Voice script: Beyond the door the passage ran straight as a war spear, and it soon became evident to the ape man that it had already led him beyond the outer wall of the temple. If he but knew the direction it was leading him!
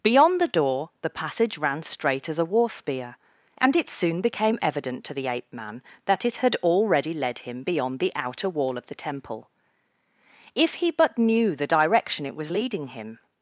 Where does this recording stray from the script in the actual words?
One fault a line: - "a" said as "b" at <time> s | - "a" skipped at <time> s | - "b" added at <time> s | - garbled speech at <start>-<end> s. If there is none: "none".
none